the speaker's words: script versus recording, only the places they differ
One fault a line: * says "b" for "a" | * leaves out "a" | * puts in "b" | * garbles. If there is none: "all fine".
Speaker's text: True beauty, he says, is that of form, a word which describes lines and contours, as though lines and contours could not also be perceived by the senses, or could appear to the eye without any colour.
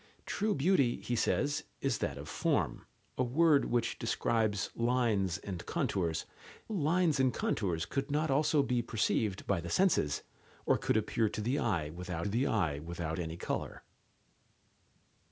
* leaves out "as though"
* puts in "the eye without"